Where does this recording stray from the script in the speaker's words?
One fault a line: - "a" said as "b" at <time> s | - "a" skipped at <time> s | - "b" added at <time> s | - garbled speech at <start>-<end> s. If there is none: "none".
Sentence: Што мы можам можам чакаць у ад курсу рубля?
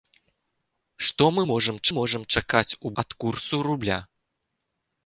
none